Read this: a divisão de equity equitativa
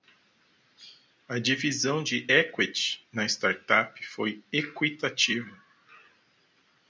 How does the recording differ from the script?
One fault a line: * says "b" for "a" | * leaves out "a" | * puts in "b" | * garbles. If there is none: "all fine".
* puts in "na startup foi"